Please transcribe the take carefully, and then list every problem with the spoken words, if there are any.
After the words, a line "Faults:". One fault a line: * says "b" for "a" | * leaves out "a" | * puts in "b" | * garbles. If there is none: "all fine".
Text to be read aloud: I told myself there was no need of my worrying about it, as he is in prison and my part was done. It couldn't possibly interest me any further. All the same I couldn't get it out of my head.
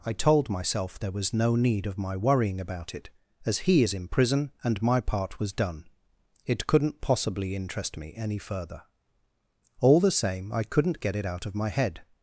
I told myself there was no need of my worrying about it, as he is in prison and my part was done. It couldn't possibly interest me any further. All the same I couldn't get it out of my head.
Faults:
all fine